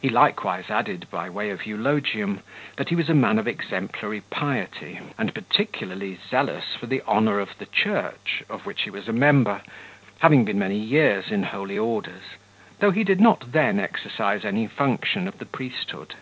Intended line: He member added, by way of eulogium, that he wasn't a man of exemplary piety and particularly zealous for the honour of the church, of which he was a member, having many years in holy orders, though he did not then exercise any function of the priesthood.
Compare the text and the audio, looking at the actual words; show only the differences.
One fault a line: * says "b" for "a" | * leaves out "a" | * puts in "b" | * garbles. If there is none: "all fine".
* says "likewise" for "member"
* says "was" for "wasn't"
* puts in "been"